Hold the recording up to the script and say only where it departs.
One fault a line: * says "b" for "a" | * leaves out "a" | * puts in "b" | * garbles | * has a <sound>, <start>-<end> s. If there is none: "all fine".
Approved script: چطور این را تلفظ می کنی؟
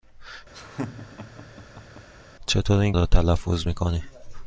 * has a laugh, 0.5-2.1 s